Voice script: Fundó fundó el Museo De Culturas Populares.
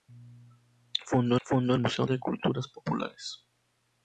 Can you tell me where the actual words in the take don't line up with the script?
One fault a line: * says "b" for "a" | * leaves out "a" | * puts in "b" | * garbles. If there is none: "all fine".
all fine